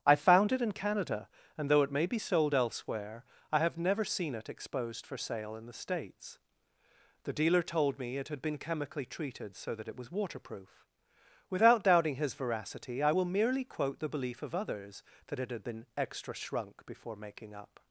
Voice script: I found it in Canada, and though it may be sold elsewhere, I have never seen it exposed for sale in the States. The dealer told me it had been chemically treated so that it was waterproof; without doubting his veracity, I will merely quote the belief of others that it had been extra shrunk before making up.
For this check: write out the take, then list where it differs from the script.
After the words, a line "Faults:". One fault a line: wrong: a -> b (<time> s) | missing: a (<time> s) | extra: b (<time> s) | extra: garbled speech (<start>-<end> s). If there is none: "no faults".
I found it in Canada, and though it may be sold elsewhere, I have never seen it exposed for sale in the States. The dealer told me it had been chemically treated so that it was waterproof; without doubting his veracity, I will merely quote the belief of others that it had been extra shrunk before making up.
Faults:
no faults